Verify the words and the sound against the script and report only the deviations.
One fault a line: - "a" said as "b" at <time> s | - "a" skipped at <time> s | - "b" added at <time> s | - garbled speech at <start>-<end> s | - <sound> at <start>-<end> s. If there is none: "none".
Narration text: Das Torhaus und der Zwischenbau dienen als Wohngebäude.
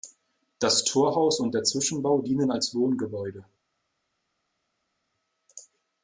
none